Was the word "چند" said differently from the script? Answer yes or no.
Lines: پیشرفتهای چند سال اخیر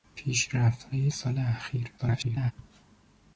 yes